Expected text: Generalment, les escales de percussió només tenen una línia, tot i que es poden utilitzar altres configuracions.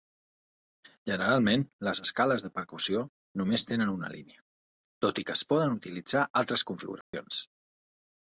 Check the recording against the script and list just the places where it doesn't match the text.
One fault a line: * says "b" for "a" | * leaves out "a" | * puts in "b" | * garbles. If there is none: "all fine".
all fine